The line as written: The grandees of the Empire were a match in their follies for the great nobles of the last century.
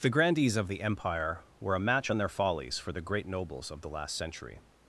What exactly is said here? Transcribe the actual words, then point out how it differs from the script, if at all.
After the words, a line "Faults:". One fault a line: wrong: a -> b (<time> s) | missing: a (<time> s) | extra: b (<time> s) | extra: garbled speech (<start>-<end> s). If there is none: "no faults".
The grandees of the Empire were a match on their follies for the great nobles of the last century.
Faults:
wrong: in -> on (2.1 s)